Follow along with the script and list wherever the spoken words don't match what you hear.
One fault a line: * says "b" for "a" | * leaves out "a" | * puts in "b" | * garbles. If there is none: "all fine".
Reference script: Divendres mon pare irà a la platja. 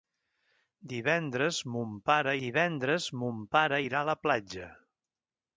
* puts in "divendres mon pare"